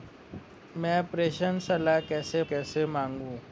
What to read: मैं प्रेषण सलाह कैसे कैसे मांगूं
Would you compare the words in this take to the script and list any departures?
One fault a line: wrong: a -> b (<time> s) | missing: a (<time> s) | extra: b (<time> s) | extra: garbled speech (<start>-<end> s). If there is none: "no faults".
no faults